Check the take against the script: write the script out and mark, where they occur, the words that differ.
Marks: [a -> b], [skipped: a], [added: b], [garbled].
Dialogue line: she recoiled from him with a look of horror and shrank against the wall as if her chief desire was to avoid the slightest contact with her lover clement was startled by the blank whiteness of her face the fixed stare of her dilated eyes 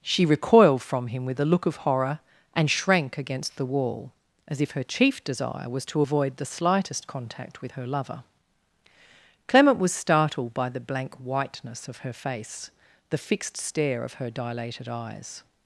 she recoiled from him with a look of horror and shrank against the wall as if her chief desire was to avoid the slightest contact with her lover clement was startled by the blank whiteness of her face the fixed stare of her dilated eyes